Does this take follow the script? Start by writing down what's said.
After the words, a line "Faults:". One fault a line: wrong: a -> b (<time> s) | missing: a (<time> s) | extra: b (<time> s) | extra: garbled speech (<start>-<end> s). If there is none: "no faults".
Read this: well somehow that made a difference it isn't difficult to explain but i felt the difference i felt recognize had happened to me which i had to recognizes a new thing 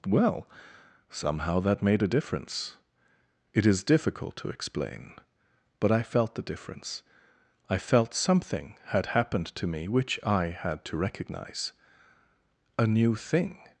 well somehow that made a difference it is difficult to explain but i felt the difference i felt something had happened to me which i had to recognize a new thing
Faults:
wrong: isn't -> is (3.6 s)
wrong: recognize -> something (8.1 s)
wrong: recognizes -> recognize (11.0 s)